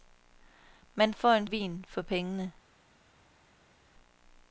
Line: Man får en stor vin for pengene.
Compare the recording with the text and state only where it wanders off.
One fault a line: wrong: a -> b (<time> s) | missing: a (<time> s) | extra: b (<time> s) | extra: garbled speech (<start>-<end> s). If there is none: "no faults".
missing: stor (1.5 s)